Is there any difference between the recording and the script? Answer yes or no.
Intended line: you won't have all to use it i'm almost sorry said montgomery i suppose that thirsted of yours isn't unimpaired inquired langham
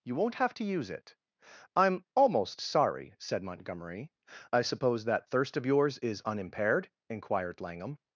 yes